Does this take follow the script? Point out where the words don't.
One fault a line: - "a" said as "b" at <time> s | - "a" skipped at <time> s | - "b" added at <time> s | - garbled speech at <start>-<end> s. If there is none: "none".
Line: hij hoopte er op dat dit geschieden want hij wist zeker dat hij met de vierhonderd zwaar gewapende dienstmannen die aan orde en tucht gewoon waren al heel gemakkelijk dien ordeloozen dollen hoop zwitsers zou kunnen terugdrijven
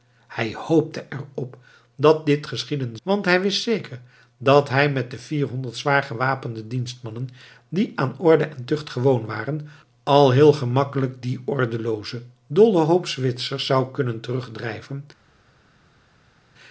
none